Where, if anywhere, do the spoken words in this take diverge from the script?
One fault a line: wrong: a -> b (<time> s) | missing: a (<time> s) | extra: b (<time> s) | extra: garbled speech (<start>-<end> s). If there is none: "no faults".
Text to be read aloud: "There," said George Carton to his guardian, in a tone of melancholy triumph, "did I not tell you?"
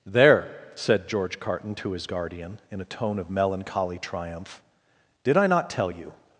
no faults